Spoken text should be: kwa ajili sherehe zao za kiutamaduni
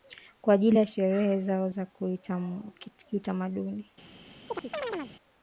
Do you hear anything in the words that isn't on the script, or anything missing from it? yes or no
yes